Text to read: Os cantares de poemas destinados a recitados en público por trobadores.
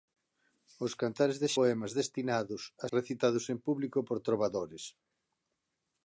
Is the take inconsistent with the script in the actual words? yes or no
no